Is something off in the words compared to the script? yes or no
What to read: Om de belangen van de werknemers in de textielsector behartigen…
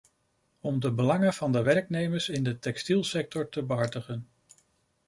yes